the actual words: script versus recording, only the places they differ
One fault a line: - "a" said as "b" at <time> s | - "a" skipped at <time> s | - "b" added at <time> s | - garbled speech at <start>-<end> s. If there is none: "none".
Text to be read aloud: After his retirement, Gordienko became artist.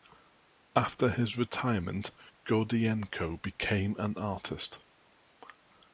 - "an" added at 4.0 s